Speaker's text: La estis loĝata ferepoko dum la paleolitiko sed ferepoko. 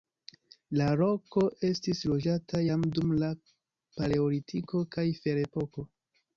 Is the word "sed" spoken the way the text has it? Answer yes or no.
no